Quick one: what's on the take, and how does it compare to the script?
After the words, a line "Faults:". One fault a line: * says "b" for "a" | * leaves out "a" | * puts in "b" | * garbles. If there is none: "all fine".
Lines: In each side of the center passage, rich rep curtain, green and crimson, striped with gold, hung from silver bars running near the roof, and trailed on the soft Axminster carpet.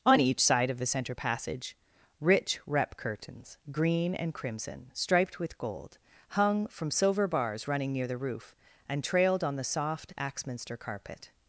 On each side of the center passage, rich rep curtains, green and crimson, striped with gold, hung from silver bars running near the roof, and trailed on the soft Axminster carpet.
Faults:
* says "On" for "In"
* says "curtains" for "curtain"